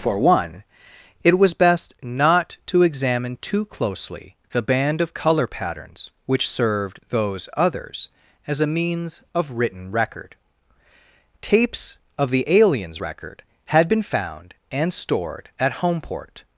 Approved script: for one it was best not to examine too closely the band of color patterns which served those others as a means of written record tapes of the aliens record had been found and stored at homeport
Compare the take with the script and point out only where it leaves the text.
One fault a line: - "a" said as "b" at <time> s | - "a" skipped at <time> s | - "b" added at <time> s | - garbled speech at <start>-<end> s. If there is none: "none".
none